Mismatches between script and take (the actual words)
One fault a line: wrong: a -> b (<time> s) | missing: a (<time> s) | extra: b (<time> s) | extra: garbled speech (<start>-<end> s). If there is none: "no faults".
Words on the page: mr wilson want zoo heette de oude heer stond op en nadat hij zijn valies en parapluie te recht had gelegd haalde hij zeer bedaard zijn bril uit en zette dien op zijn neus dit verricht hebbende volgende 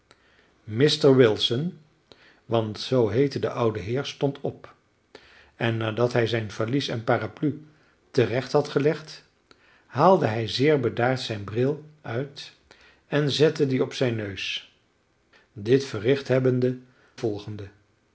no faults